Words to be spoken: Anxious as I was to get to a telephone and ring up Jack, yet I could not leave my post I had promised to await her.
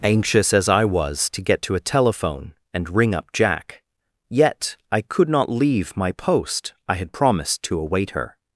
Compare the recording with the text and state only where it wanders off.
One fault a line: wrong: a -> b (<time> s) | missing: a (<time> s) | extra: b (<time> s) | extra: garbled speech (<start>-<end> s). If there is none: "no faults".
no faults